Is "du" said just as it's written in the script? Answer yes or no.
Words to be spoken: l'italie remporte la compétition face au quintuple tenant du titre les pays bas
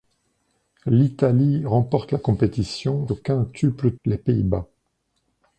no